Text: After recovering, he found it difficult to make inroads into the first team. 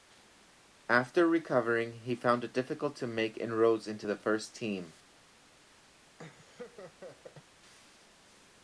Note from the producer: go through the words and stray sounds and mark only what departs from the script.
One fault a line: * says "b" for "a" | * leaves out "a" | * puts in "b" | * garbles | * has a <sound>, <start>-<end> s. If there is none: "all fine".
* has a laugh, 6.2-7.5 s